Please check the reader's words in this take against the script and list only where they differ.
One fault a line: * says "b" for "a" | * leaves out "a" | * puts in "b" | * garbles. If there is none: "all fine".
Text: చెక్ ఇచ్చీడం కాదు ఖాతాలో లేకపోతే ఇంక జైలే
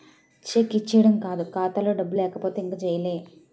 * puts in "డబ్బులు"